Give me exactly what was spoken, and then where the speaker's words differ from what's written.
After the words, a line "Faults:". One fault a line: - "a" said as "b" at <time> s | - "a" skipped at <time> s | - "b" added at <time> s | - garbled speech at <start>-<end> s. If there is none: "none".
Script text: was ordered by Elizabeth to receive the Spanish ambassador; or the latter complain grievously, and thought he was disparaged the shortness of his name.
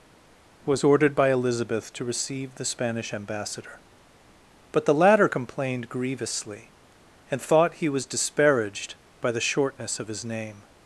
was ordered by Elizabeth to receive the Spanish ambassador; but the latter complained grievously, and thought he was disparaged by the shortness of his name.
Faults:
- "or" said as "but" at 4.7 s
- "complain" said as "complained" at 5.3 s
- "by" added at 9.2 s